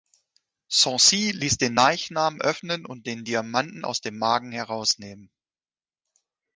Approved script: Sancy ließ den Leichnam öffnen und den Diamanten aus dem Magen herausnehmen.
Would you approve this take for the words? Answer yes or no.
yes